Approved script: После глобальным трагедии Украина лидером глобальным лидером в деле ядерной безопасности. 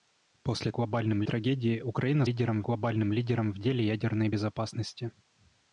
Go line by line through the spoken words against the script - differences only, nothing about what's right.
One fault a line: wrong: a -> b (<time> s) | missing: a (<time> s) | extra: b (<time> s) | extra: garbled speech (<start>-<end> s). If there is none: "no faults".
no faults